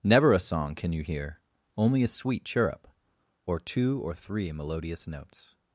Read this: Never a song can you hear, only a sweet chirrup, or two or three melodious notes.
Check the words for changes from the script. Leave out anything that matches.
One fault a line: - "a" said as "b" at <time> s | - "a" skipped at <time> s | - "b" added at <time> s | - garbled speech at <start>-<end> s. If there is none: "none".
none